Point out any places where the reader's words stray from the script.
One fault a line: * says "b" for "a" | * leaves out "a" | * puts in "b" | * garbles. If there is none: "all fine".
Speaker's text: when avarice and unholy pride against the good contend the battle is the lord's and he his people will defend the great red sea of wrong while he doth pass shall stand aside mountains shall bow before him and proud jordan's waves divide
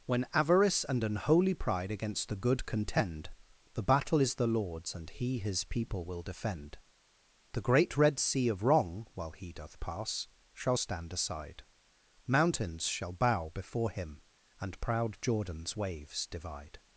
all fine